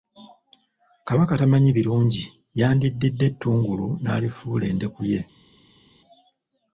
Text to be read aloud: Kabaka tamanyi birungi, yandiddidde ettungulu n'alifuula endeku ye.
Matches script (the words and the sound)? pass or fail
pass